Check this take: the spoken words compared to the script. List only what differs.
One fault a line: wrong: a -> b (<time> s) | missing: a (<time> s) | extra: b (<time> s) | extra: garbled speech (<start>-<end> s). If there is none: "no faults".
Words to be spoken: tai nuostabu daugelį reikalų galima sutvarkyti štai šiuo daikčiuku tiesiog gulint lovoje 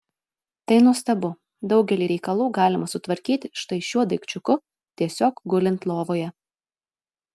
no faults